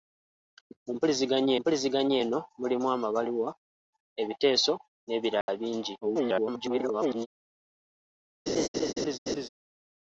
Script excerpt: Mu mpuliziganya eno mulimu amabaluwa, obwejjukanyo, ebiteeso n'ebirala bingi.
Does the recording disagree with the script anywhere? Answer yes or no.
yes